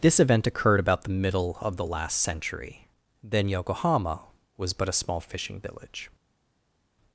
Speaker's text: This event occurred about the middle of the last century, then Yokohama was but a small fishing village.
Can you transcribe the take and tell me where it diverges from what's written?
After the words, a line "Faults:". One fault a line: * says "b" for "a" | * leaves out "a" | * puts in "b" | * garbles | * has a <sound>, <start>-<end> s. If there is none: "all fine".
This event occurred about the middle of the last century, then Yokohama was but a small fishing village.
Faults:
all fine